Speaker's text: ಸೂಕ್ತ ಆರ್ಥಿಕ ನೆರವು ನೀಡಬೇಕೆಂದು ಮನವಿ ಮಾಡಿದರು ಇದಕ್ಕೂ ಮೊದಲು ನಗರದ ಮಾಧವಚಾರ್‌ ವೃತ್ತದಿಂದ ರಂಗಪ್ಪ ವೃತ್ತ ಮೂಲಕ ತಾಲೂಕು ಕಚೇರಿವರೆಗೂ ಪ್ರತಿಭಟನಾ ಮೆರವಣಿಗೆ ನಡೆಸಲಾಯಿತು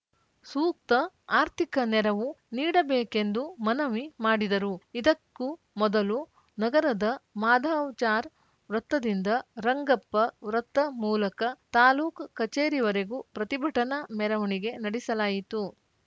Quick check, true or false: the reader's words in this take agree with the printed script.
true